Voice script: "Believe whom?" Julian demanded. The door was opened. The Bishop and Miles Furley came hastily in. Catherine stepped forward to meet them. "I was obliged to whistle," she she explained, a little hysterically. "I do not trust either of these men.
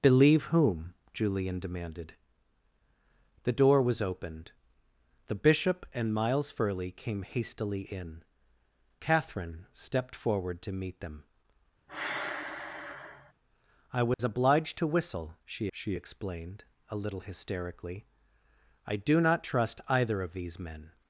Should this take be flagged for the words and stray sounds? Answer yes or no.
yes